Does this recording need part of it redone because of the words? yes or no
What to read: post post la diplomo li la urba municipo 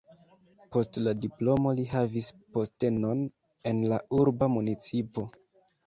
yes